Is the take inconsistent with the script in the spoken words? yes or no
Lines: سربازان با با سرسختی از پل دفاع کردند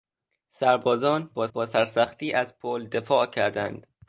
no